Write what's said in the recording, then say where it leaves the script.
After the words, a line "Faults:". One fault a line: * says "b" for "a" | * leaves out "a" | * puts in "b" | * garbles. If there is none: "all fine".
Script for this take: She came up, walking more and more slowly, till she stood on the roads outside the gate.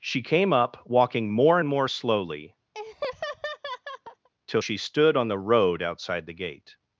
She came up, walking more and more slowly, till she stood on the road outside the gate.
Faults:
* says "road" for "roads"